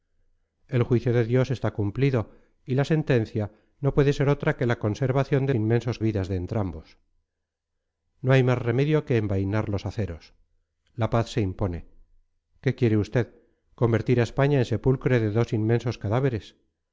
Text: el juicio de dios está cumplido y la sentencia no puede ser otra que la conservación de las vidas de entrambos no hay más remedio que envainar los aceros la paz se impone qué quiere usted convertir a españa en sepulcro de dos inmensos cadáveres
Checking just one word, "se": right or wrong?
right